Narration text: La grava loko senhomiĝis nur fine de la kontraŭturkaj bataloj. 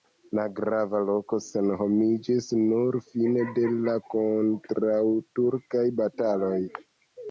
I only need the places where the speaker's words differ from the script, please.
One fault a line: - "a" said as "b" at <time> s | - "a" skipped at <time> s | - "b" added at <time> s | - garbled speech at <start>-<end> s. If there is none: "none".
none